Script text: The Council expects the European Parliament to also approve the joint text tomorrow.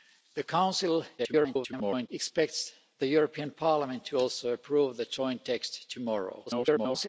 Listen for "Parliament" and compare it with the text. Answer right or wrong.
right